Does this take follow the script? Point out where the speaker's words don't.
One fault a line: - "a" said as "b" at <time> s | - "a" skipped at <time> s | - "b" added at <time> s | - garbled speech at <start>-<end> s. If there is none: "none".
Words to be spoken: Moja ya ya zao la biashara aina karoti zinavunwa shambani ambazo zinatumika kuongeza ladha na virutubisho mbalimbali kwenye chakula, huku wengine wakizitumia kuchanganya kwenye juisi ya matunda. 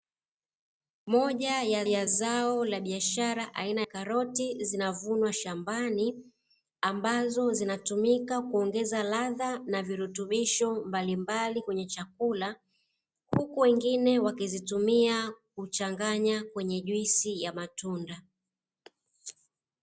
none